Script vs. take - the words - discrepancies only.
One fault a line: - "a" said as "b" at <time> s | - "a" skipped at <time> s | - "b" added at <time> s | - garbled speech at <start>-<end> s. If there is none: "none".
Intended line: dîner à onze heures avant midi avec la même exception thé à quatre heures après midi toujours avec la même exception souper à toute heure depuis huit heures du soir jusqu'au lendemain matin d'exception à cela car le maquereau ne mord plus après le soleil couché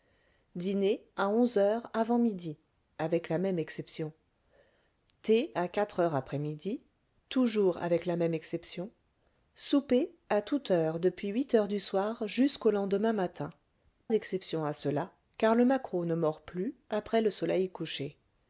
none